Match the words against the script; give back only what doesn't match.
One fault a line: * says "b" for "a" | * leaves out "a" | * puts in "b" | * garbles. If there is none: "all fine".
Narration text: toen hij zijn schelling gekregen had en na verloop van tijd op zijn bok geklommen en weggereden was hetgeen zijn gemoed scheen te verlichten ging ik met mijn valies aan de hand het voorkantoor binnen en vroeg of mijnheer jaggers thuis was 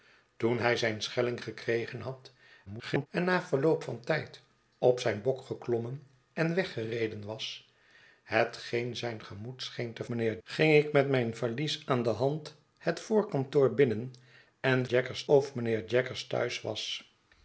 * garbles
* says "mijnheer" for "verlichten"
* says "jaggers" for "vroeg"